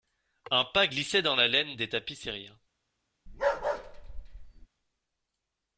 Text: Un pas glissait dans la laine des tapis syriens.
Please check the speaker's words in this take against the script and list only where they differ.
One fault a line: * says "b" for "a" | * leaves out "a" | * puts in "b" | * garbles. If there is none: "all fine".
all fine